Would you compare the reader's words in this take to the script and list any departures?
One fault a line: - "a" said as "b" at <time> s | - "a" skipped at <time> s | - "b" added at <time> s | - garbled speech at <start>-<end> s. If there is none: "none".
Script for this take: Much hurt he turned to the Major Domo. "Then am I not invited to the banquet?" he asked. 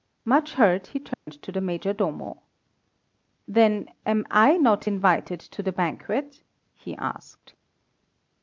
none